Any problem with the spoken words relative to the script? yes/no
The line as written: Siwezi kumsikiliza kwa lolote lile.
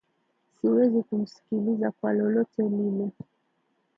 no